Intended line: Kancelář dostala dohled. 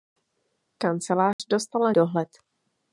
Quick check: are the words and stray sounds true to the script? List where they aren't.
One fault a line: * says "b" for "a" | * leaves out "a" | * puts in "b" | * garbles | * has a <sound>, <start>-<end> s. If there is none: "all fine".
* has a dropout, 1.3-1.4 s